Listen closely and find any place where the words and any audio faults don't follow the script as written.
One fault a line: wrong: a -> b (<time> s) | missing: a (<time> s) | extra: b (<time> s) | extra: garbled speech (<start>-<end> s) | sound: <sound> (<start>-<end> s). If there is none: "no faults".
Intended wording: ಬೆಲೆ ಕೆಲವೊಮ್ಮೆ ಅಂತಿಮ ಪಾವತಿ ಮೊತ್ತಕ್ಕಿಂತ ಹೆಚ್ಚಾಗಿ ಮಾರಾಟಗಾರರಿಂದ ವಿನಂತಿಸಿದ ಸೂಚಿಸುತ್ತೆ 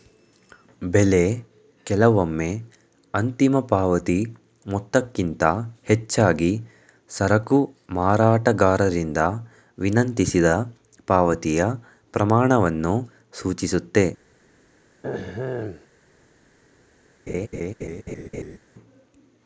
extra: ಸರಕು (7.1 s)
extra: ಪಾವತಿಯ ಪ್ರಮಾಣವನ್ನು (11.1 s)
sound: throat clearing (15.0-15.9 s)
sound: laugh (17.3-18.6 s)